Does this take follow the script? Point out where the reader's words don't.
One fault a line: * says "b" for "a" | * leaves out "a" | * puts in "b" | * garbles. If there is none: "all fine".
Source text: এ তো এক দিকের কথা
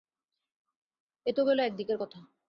* puts in "গেল"